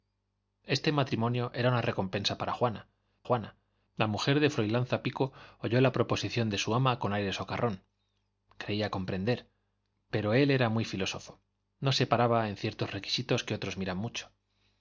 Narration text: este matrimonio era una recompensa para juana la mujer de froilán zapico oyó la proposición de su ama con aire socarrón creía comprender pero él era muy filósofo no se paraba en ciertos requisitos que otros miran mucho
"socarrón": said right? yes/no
yes